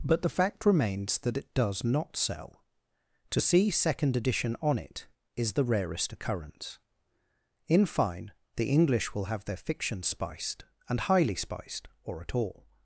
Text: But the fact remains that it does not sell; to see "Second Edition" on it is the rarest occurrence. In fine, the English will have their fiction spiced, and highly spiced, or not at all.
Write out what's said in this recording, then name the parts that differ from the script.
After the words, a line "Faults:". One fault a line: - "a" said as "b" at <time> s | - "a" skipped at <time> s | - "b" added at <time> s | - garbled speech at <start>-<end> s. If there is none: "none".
But the fact remains that it does not sell; to see "Second Edition" on it is the rarest occurrence. In fine, the English will have their fiction spiced, and highly spiced, or at all.
Faults:
- "not" skipped at 12.2 s